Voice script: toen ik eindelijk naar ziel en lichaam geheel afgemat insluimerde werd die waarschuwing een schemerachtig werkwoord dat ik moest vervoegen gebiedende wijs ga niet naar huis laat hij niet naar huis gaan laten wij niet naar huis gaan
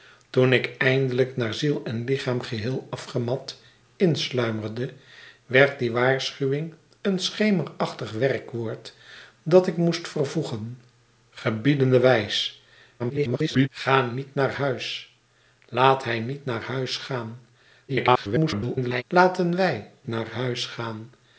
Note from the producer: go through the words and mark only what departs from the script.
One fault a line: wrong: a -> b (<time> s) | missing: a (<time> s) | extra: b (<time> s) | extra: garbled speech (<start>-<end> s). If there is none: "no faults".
extra: garbled speech (13.0-13.7 s)
extra: garbled speech (17.9-19.0 s)
missing: niet (19.9 s)